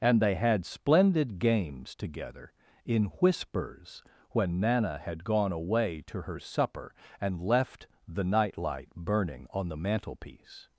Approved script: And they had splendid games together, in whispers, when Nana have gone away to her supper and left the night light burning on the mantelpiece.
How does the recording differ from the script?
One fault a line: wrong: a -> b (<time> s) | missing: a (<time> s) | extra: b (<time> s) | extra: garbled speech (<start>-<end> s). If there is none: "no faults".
wrong: have -> had (5.0 s)